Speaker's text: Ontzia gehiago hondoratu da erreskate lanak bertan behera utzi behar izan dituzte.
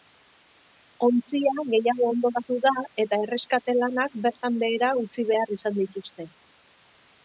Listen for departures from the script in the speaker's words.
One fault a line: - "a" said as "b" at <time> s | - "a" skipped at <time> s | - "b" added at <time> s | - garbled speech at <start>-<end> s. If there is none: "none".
- "eta" added at 3.1 s